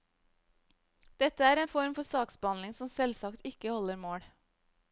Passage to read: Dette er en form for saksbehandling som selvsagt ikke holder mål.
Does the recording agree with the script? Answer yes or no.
yes